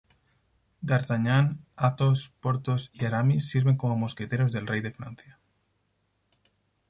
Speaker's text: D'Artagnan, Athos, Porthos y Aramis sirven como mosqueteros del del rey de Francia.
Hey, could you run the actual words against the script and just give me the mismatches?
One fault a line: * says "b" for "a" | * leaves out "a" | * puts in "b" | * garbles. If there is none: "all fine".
* leaves out "del"